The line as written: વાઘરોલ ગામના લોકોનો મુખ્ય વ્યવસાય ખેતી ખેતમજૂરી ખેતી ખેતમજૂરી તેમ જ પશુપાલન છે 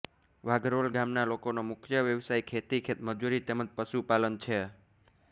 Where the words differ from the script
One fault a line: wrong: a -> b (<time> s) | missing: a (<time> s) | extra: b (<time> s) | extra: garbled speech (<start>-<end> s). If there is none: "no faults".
missing: ખેતી ખેતમજૂરી (3.4 s)